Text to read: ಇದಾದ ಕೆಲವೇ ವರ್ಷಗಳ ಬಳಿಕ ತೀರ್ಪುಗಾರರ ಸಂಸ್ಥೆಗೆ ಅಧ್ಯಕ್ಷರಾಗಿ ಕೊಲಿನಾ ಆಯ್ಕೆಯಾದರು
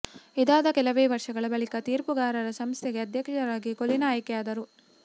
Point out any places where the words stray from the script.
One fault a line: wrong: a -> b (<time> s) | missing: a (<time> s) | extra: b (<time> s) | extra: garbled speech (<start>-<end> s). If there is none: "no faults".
no faults